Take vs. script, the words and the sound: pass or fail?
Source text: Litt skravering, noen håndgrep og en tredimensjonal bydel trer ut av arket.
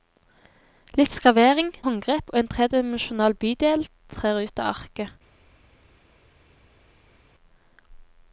fail